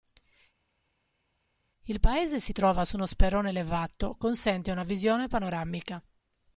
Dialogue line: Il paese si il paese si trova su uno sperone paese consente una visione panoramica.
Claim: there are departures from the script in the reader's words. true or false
true